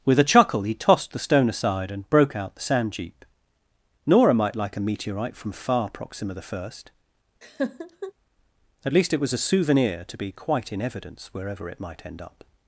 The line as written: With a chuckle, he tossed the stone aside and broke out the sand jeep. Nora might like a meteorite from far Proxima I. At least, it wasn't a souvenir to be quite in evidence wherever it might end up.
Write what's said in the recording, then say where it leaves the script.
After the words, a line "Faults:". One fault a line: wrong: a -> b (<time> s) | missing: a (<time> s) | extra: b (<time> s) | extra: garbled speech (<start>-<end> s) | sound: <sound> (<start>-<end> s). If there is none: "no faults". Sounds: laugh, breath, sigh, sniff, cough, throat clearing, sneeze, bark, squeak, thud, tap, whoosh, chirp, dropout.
With a chuckle, he tossed the stone aside and broke out the sand jeep. Nora might like a meteorite from far Proxima I. At least, it was a souvenir to be quite in evidence wherever it might end up.
Faults:
sound: laugh (7.4-8.1 s)
wrong: wasn't -> was (9.2 s)